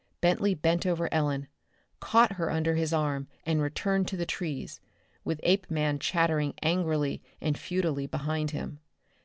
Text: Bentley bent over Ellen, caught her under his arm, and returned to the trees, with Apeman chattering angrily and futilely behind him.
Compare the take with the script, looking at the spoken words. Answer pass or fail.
pass